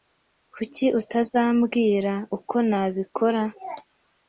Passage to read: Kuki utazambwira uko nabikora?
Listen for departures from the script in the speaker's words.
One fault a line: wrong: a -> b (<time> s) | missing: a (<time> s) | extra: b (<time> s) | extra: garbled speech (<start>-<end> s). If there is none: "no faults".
no faults